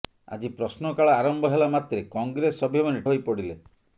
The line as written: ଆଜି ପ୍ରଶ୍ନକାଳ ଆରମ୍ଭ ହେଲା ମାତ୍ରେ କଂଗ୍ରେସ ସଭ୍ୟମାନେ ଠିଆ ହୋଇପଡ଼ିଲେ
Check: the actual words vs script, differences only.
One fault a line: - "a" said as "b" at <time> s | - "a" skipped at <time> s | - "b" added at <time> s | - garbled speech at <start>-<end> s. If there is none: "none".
- "ଠିଆ" skipped at 3.1 s